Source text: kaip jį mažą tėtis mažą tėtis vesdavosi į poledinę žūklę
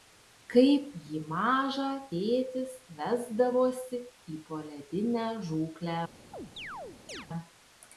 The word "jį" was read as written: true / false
true